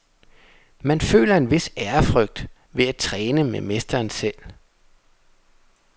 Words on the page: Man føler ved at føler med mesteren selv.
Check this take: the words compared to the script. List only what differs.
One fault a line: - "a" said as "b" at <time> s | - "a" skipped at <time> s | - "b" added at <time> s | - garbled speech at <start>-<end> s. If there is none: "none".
- "en vis ærefrygt" added at 1.4 s
- "føler" said as "træne" at 3.0 s